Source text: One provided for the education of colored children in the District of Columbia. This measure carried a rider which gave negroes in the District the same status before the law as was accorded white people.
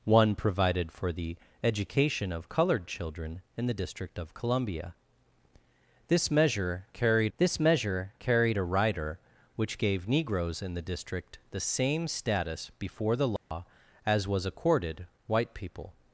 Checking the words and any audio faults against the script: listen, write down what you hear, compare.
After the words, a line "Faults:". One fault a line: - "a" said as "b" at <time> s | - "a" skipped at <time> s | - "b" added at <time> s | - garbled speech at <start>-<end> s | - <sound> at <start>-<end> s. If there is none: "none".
One provided for the education of colored children in the District of Columbia. This measure carried this measure carried a rider which gave negroes in the District the same status before the law as was accorded white people.
Faults:
- "this measure carried" added at 7.4 s
- dropout at 13.4-13.5 s